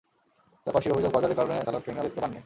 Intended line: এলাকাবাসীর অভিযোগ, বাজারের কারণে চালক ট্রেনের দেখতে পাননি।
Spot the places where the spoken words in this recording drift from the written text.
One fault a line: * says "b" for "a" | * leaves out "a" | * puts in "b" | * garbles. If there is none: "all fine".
all fine